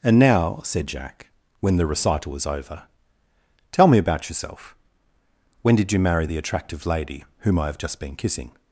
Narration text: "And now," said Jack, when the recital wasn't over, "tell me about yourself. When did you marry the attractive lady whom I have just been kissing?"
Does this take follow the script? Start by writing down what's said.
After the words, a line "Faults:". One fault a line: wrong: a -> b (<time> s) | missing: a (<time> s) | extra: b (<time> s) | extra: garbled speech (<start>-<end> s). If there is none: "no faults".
"And now," said Jack, when the recital was over, "tell me about yourself. When did you marry the attractive lady whom I have just been kissing?"
Faults:
wrong: wasn't -> was (2.3 s)